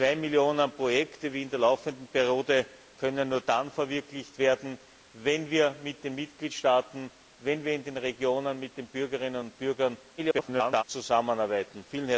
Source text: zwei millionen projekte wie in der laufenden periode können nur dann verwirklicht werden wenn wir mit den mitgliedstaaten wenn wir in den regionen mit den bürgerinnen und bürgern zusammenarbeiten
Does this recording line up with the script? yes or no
no